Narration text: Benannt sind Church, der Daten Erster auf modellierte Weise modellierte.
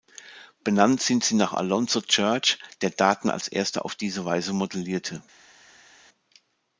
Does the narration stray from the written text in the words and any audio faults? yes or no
yes